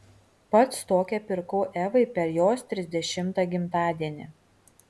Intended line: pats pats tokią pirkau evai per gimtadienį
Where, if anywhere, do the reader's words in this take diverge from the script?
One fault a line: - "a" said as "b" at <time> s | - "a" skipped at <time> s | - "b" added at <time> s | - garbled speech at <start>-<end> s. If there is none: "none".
- "pats" skipped at 0.8 s
- "jos trisdešimtą" added at 2.4 s